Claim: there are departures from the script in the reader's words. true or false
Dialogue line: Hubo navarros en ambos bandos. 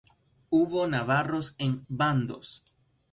true